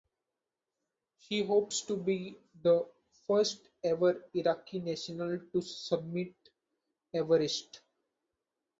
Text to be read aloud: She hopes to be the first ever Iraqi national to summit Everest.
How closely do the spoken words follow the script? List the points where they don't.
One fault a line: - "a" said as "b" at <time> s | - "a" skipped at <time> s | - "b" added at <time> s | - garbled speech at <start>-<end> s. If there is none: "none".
none